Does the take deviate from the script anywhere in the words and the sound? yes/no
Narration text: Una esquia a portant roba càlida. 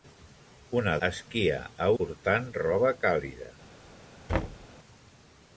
yes